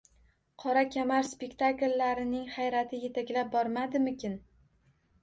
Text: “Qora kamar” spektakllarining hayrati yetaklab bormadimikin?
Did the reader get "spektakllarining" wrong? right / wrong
right